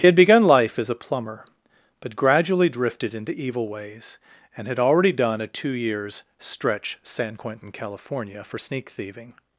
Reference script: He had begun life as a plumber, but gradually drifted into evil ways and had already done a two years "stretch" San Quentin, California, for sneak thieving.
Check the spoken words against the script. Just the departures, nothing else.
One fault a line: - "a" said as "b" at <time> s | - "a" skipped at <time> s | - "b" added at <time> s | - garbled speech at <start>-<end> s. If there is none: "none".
none